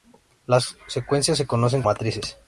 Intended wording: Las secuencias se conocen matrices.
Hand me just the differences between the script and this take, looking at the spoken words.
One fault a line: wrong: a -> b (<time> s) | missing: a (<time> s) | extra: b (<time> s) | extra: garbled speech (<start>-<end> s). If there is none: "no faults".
no faults